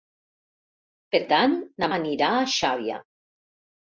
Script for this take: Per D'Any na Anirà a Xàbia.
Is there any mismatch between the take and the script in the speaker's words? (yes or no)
no